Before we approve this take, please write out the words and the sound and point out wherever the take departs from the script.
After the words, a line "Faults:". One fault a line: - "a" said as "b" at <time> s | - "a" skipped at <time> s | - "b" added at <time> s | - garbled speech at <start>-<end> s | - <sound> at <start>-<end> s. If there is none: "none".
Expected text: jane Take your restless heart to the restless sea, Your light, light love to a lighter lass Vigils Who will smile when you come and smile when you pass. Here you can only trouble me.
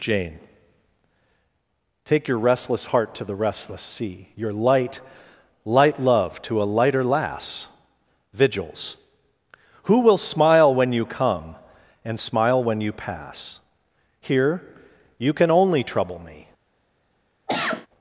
jane Take your restless heart to the restless sea, Your light, light love to a lighter lass Vigils Who will smile when you come and smile when you pass. Here you can only trouble me.
Faults:
- cough at 17.5-17.9 s